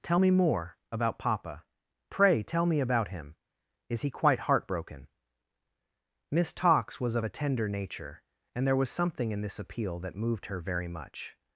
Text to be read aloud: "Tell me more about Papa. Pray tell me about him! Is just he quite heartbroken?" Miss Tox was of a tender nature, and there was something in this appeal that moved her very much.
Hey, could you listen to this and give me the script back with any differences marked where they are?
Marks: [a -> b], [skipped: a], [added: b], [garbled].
"Tell me more about Papa. Pray tell me about him! Is [skipped: just] he quite heartbroken?" Miss Tox was of a tender nature, and there was something in this appeal that moved her very much.